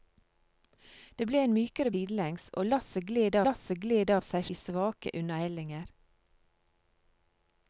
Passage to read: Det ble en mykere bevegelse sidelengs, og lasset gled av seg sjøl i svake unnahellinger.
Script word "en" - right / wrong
right